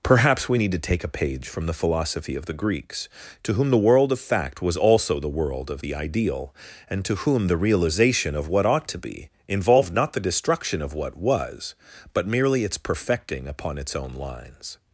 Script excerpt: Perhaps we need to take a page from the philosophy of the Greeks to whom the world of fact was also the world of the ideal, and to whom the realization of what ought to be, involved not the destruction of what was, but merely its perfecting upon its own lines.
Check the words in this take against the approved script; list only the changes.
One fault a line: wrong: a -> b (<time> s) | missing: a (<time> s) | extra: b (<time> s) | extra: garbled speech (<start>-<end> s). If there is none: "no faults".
no faults